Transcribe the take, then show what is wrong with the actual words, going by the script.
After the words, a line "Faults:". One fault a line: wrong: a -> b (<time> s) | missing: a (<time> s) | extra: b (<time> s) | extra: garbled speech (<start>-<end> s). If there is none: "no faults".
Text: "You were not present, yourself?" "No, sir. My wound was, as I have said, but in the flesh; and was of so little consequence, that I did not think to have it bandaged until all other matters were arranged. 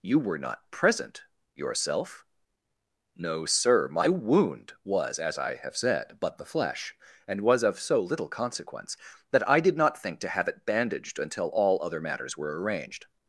"You were not present, yourself?" "No, sir. My wound was, as I have said, but the flesh; and was of so little consequence, that I did not think to have it bandaged until all other matters were arranged.
Faults:
missing: in (6.4 s)